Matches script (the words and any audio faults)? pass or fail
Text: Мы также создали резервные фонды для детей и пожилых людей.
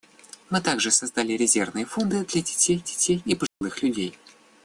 fail